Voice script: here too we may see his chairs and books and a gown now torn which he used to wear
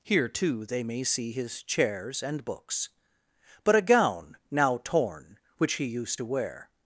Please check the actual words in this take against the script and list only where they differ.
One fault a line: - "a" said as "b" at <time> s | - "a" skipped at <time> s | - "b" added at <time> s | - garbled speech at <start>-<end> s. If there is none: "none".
- "we" said as "they" at 0.7 s
- "and" said as "but" at 3.6 s